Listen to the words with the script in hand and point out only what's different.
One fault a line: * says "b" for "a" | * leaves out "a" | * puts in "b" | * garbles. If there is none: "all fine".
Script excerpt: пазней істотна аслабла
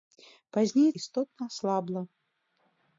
all fine